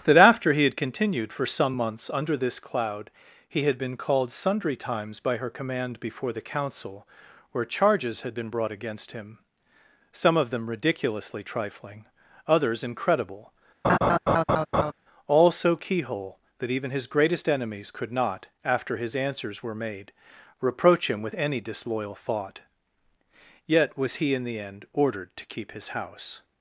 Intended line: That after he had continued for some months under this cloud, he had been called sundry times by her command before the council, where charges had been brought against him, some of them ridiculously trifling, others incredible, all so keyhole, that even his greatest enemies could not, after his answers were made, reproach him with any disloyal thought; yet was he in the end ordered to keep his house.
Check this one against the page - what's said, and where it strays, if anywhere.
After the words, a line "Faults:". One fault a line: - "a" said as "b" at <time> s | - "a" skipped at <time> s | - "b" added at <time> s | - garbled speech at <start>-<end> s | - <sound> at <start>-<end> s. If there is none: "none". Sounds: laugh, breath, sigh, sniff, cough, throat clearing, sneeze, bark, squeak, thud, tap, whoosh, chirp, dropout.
That after he had continued for some months under this cloud, he had been called sundry times by her command before the council, where charges had been brought against him, some of them ridiculously trifling, others incredible, all so keyhole, that even his greatest enemies could not, after his answers were made, reproach him with any disloyal thought; yet was he in the end ordered to keep his house.
Faults:
- laugh at 13.8-14.9 s